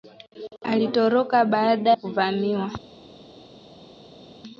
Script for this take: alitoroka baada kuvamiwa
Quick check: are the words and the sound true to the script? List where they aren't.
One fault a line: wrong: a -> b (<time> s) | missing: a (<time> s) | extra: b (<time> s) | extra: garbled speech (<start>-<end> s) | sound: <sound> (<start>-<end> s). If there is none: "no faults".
no faults